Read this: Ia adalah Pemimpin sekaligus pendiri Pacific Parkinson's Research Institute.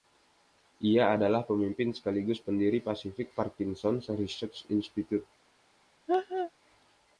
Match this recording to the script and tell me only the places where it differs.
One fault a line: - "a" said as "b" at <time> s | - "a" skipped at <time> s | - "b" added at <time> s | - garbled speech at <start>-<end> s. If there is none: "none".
none